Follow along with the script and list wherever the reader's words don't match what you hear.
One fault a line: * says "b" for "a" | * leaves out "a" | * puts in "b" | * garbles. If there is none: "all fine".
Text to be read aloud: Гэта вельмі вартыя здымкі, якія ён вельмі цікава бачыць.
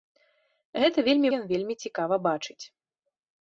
* leaves out "вартыя здымкі якія"